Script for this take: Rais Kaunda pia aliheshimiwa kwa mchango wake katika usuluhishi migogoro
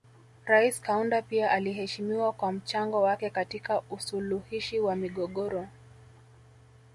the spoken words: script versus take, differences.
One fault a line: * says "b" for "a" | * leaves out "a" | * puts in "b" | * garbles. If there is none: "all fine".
* puts in "wa"